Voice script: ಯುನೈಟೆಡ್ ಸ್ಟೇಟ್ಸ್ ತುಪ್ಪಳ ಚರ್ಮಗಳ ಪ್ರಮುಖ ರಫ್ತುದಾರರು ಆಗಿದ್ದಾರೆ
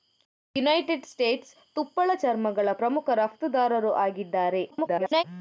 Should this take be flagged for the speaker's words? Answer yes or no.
yes